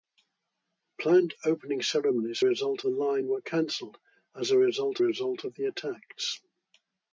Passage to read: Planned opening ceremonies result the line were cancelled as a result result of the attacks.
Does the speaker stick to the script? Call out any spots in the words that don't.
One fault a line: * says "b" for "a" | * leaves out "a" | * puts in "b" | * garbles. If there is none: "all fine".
all fine